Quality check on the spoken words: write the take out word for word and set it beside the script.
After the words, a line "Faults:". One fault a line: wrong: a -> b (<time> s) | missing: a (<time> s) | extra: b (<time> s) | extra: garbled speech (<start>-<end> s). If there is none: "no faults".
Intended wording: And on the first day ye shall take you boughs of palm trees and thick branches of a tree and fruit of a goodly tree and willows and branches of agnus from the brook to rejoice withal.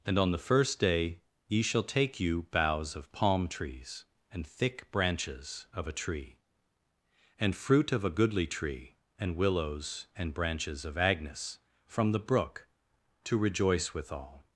And on the first day ye shall take you boughs of palm trees and thick branches of a tree and fruit of a goodly tree and willows and branches of agnus from the brook to rejoice withal.
Faults:
no faults